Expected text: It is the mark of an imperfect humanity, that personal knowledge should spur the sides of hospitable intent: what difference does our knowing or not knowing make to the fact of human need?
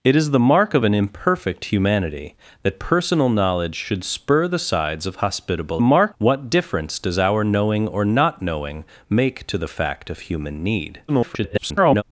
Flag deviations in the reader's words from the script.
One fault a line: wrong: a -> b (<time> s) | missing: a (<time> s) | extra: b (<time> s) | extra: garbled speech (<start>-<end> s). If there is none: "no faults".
wrong: intent -> mark (5.8 s)
extra: garbled speech (11.1-12.0 s)